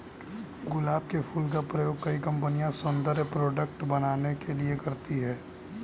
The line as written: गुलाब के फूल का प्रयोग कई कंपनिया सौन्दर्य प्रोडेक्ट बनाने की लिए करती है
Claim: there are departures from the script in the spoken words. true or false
true